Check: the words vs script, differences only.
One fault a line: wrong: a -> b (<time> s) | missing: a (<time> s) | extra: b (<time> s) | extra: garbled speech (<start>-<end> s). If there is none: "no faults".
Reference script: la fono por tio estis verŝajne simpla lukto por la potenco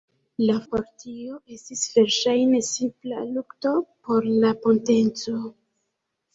missing: fono (0.5 s)